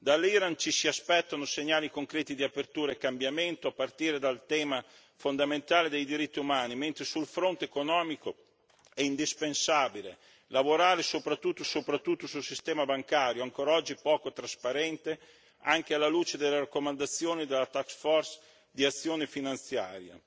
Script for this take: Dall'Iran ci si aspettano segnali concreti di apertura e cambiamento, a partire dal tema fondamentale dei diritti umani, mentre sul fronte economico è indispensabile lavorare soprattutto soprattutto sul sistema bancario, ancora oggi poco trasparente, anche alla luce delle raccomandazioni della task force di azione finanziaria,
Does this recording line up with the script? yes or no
yes